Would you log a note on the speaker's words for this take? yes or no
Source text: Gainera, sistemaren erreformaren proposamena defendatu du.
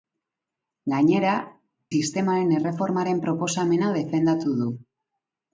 no